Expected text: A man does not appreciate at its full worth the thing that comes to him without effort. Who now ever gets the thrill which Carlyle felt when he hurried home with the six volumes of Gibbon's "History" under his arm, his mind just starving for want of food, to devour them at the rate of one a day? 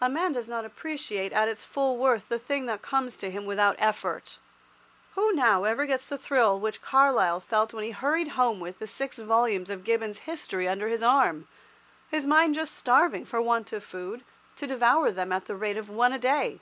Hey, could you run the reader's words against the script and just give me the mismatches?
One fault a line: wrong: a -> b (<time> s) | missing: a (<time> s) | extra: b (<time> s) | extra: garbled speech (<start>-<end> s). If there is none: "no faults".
no faults